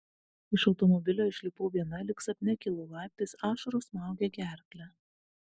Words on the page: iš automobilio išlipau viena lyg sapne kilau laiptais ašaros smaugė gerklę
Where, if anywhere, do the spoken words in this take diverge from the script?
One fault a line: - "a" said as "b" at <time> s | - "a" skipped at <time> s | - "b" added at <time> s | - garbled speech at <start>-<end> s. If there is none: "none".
none